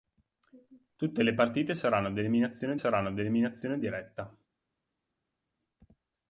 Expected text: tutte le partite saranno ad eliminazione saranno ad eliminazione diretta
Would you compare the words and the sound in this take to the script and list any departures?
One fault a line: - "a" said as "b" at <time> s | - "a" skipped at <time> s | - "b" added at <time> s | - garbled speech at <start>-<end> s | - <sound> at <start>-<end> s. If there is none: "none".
none